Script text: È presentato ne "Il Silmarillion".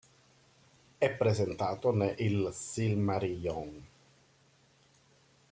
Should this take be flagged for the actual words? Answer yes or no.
no